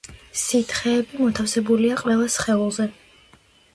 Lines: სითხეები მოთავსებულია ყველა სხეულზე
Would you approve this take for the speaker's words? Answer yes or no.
yes